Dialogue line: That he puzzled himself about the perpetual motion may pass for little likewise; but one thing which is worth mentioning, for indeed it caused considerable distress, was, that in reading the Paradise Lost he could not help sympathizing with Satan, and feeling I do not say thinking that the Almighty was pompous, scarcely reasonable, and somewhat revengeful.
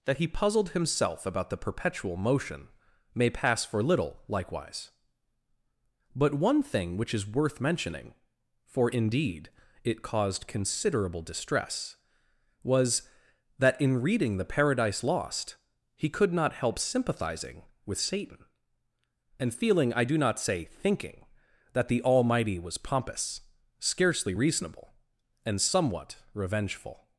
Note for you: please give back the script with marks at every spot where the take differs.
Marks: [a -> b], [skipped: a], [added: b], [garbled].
That he puzzled himself about the perpetual motion may pass for little likewise; but one thing which is worth mentioning, for indeed it caused considerable distress, was, that in reading the Paradise Lost he could not help sympathizing with Satan, and feeling I do not say thinking that the Almighty was pompous, scarcely reasonable, and somewhat revengeful.